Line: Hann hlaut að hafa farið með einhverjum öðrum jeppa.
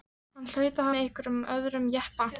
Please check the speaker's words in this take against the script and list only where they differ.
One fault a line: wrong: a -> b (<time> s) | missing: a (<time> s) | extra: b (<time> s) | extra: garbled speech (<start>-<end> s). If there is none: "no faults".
missing: hafa farið (0.9 s)